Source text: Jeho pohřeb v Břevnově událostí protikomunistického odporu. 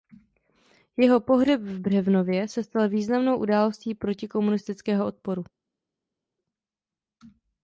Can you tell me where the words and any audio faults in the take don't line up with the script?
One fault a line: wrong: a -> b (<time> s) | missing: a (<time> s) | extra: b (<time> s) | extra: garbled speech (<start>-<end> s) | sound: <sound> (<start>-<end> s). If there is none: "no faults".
extra: se stal významnou (2.5 s)